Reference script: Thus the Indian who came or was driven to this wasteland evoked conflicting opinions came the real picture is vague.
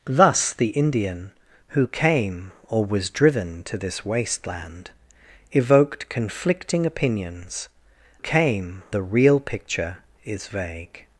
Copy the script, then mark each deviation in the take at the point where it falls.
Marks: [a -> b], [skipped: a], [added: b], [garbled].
Thus the Indian who came or was driven to this wasteland evoked conflicting opinions came the real picture is vague.